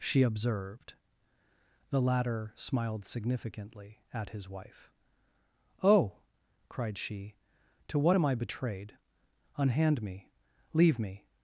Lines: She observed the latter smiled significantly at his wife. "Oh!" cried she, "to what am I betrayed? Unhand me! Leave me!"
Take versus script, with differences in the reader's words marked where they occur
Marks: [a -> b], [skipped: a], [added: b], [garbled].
She observed the latter smiled significantly at his wife. "Oh!" cried she, "to what am I betrayed? Unhand me! Leave me!"